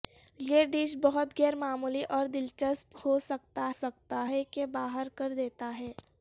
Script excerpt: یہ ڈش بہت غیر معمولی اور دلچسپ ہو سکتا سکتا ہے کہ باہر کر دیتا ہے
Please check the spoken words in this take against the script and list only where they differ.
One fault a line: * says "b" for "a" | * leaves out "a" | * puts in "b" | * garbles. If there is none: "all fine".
all fine